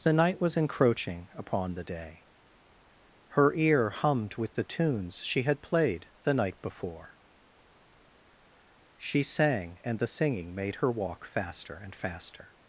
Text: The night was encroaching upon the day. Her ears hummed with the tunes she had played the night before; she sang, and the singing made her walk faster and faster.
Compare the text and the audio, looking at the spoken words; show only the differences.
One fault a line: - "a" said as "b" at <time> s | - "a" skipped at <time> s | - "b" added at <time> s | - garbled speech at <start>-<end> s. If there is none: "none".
- "ears" said as "ear" at 3.5 s